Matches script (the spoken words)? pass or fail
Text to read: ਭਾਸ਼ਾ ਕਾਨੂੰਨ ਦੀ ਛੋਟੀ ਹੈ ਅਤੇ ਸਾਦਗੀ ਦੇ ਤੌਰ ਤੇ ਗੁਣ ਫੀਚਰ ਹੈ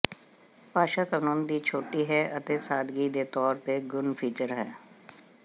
pass